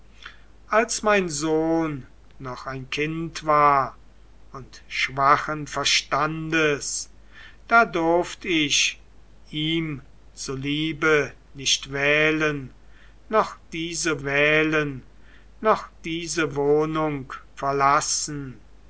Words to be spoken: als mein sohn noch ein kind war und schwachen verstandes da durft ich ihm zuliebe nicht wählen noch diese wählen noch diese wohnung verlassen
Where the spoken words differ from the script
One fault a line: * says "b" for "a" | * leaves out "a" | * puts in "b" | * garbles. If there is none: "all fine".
all fine